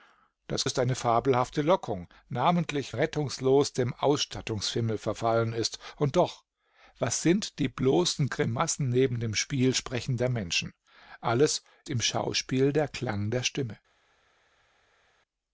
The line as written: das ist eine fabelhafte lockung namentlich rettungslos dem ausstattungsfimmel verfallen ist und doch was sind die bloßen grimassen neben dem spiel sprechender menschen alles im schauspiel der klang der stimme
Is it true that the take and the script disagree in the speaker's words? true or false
false